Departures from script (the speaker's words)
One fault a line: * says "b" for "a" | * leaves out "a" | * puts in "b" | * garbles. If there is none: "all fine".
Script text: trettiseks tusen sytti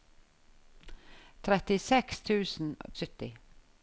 all fine